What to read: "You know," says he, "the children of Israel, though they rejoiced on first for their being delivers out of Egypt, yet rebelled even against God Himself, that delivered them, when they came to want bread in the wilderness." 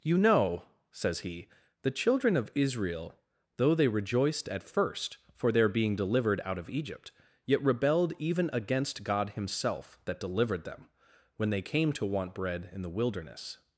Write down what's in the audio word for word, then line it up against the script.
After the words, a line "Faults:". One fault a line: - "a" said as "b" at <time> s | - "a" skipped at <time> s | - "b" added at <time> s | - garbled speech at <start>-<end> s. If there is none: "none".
"You know," says he, "the children of Israel, though they rejoiced at first for their being delivered out of Egypt, yet rebelled even against God Himself, that delivered them, when they came to want bread in the wilderness."
Faults:
- "on" said as "at" at 4.5 s
- "delivers" said as "delivered" at 5.9 s